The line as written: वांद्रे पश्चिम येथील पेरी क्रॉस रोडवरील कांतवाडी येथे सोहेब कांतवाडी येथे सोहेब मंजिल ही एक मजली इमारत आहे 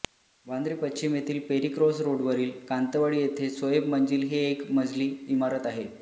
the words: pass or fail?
fail